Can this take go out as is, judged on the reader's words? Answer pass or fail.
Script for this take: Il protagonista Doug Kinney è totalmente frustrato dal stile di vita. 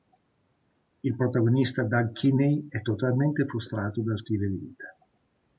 pass